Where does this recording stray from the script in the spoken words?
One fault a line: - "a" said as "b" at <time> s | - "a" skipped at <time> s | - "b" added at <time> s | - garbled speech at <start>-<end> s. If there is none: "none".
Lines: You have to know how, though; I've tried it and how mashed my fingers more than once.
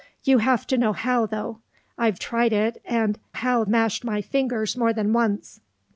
none